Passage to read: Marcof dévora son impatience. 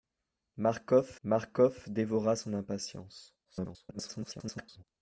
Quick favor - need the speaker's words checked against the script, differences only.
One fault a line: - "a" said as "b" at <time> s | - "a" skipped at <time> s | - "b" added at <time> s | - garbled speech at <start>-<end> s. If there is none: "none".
- "marcof" added at 1.2 s
- garbled speech at 3.4-4.8 s